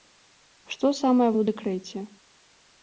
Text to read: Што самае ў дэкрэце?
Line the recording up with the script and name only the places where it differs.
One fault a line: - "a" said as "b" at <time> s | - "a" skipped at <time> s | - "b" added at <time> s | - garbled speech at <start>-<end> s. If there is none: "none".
none